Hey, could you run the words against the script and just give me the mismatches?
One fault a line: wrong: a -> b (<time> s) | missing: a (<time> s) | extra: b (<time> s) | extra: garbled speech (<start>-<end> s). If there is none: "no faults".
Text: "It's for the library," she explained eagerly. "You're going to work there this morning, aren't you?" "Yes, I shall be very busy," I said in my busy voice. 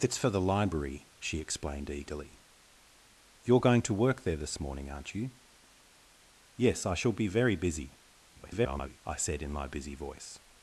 extra: garbled speech (8.3-9.0 s)